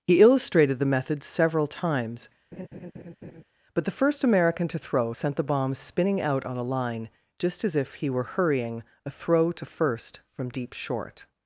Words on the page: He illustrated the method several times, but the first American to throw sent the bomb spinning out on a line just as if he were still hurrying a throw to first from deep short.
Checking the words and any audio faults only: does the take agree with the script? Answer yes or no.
no